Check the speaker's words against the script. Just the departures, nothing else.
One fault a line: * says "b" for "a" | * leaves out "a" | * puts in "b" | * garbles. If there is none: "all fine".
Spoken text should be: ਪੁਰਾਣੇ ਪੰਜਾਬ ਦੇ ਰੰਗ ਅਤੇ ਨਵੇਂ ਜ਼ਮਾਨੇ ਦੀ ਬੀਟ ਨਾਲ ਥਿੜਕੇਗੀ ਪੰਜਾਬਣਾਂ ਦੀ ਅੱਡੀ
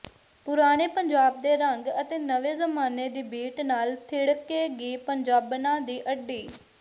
all fine